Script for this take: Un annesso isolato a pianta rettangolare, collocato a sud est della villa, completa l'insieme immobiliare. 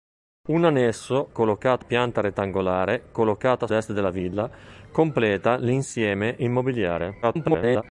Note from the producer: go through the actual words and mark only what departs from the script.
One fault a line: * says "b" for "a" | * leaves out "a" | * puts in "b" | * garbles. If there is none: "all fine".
* says "collocato" for "isolato"
* leaves out "sud"
* garbles